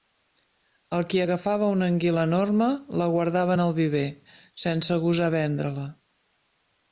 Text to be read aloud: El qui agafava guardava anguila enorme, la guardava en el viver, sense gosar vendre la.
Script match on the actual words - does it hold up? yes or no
no